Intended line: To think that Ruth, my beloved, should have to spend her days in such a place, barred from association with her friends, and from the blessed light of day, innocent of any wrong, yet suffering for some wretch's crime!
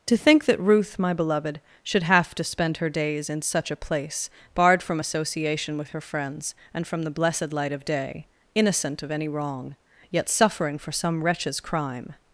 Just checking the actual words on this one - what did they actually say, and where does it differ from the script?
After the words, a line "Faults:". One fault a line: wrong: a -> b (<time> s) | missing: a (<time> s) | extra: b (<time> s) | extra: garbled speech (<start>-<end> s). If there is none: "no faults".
To think that Ruth, my beloved, should have to spend her days in such a place, barred from association with her friends, and from the blessed light of day, innocent of any wrong, yet suffering for some wretch's crime!
Faults:
no faults